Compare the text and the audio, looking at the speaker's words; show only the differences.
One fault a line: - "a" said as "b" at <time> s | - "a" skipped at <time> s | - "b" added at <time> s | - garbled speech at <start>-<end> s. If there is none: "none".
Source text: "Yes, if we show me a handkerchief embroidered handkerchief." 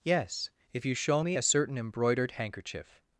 - "we" said as "you" at 0.8 s
- "handkerchief" said as "certain" at 1.4 s